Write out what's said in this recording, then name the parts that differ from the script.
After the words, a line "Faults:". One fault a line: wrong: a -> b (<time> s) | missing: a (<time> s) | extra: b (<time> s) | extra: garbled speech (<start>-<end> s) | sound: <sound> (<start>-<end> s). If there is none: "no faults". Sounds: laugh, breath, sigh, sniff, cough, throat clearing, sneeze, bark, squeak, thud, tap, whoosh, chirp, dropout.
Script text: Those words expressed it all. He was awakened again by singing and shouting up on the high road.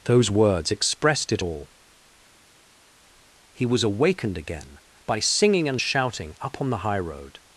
Those words expressed it all. He was awakened again by singing and shouting up on the high road.
Faults:
no faults